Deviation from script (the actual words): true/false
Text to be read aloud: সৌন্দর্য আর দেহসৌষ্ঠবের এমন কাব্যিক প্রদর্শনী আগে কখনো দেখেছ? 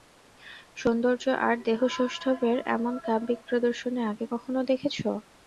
false